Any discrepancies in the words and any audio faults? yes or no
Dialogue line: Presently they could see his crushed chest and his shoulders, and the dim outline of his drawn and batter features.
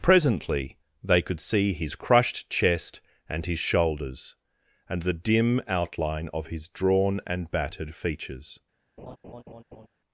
yes